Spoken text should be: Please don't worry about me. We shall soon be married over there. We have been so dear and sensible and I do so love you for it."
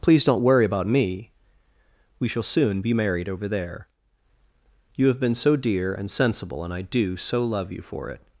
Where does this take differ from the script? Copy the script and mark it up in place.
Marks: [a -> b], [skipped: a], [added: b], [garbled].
Please don't worry about me. We shall soon be married over there. [We -> You] have been so dear and sensible and I do so love you for it."